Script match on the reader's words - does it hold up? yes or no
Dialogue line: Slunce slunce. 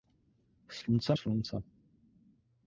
yes